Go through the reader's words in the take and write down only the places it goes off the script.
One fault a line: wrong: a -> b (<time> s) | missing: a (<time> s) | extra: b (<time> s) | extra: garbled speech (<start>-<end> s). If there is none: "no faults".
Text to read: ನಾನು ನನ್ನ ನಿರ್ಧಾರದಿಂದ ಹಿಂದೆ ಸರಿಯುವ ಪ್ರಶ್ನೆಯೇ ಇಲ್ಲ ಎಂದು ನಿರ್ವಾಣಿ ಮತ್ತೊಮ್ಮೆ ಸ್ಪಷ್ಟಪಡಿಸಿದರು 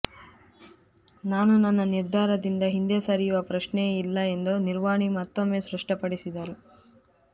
no faults